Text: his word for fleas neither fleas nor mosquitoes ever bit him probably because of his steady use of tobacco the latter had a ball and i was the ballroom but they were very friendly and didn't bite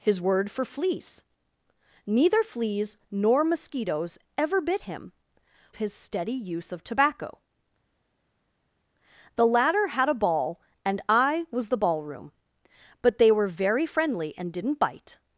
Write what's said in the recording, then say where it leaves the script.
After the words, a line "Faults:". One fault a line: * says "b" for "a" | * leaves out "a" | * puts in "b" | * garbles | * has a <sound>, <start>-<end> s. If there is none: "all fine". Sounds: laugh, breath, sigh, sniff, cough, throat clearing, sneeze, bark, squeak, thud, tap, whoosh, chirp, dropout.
his word for fleas neither fleas nor mosquitoes ever bit him his steady use of tobacco the latter had a ball and i was the ballroom but they were very friendly and didn't bite
Faults:
* leaves out "probably because of"